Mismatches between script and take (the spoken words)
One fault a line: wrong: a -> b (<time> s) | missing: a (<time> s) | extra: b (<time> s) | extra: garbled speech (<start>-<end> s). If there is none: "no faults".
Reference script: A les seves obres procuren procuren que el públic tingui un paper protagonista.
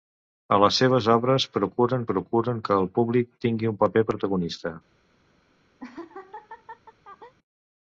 no faults